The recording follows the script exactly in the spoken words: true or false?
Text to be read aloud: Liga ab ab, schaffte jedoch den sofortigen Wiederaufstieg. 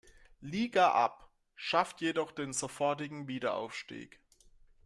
false